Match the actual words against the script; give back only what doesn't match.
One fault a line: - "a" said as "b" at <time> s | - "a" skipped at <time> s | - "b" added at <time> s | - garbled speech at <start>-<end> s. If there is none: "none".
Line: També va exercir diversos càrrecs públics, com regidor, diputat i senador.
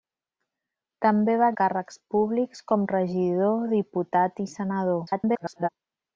- "exercir diversos" skipped at 1.5 s
- garbled speech at 5.1-5.7 s